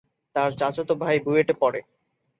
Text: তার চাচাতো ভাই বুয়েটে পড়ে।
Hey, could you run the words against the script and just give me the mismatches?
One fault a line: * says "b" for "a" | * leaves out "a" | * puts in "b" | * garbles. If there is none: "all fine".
all fine